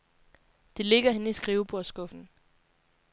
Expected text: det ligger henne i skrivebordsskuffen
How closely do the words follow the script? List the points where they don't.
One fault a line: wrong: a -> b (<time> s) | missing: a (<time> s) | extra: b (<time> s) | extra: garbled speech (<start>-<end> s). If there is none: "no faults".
no faults